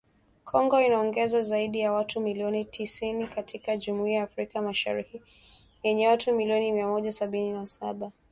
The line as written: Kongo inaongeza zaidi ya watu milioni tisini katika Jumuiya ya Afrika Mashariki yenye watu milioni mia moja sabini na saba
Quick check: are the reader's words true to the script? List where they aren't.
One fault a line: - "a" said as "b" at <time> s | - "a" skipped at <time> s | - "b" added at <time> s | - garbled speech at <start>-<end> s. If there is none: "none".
none